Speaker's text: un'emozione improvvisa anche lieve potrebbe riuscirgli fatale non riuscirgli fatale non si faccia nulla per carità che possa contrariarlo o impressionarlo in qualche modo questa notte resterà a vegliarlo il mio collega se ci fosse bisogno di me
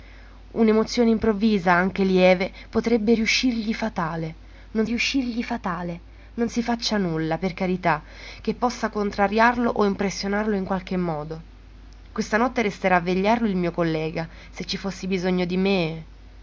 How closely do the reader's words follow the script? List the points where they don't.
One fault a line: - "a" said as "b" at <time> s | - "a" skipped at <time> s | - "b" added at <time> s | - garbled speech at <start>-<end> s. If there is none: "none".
none